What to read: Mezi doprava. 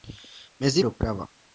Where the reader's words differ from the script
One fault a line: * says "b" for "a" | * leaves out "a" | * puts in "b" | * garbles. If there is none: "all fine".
all fine